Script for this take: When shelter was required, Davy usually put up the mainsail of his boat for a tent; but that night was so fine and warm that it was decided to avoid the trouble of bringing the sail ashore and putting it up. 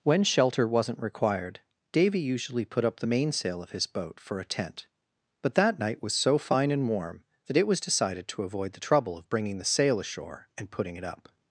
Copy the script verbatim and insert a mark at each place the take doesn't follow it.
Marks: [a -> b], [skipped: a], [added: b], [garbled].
When shelter [was -> wasn't] required, Davy usually put up the mainsail of his boat for a tent; but that night was so fine and warm that it was decided to avoid the trouble of bringing the sail ashore and putting it up.